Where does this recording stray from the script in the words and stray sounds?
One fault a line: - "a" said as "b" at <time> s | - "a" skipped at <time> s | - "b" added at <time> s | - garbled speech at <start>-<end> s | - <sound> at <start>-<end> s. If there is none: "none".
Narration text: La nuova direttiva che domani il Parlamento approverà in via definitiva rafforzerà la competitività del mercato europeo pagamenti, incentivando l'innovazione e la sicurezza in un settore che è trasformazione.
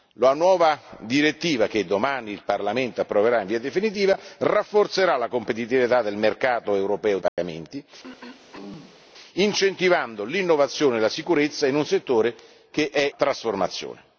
- dropout at 7.3-7.4 s
- throat clearing at 8.0-9.1 s